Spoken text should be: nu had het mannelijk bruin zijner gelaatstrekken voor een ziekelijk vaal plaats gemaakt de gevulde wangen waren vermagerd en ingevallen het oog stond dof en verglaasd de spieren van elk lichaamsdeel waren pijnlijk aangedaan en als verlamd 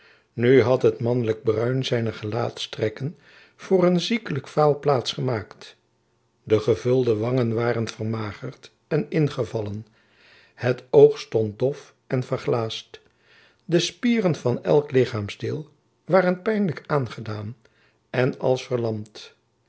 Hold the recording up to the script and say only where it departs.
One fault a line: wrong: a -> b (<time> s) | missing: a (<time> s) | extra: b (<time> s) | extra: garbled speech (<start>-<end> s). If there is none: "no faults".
no faults